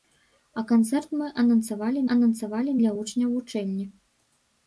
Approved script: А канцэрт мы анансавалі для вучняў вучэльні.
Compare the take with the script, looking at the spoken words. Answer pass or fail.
fail